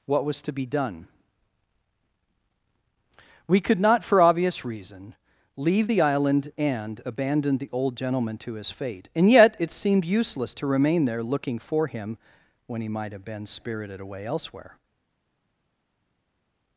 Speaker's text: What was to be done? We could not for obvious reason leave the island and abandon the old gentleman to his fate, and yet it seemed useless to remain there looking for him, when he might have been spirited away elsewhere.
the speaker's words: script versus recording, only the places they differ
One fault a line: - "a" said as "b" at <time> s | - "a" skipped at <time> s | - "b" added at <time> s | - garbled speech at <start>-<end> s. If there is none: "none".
none